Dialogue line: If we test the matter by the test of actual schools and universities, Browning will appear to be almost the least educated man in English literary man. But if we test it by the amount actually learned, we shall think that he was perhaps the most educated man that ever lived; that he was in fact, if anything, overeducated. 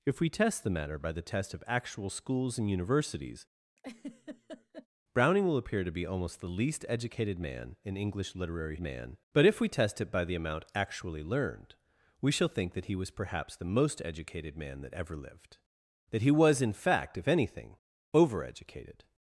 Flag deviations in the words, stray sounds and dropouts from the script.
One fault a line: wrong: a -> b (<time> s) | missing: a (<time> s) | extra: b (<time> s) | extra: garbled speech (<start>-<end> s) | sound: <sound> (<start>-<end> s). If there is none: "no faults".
sound: laugh (3.8-4.9 s)